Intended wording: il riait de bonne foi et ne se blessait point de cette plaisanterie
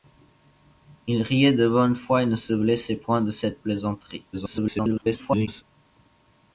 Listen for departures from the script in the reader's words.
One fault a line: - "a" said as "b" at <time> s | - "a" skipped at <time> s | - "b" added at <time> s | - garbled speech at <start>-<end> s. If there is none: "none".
- garbled speech at 4.3-5.6 s